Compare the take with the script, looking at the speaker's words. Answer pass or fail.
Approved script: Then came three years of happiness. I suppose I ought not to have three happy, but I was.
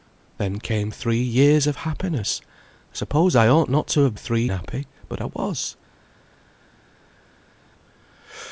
pass